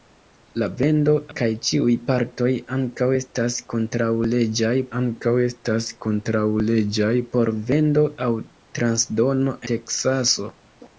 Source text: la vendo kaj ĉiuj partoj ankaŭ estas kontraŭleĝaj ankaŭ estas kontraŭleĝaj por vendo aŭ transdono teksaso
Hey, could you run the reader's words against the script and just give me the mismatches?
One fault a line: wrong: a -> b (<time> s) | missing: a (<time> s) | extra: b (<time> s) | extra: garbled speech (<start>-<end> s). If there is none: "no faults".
no faults